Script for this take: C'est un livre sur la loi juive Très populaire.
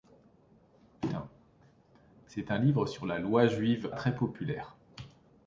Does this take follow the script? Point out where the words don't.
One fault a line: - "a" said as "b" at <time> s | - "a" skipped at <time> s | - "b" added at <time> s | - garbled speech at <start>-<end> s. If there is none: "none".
none